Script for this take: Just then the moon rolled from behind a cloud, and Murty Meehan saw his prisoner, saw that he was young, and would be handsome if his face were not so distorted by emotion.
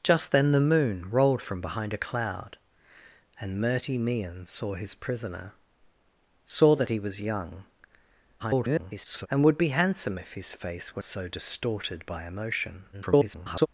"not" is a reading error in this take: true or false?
true